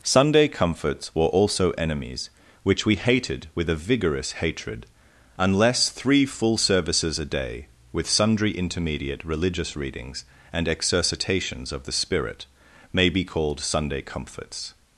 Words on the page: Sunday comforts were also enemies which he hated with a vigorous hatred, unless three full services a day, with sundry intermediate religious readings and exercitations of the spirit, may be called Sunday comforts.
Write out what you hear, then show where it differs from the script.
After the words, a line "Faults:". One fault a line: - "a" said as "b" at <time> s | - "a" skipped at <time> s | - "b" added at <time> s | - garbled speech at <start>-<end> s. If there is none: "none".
Sunday comforts were also enemies which we hated with a vigorous hatred, unless three full services a day, with sundry intermediate religious readings and exercitations of the spirit, may be called Sunday comforts.
Faults:
- "he" said as "we" at 2.9 s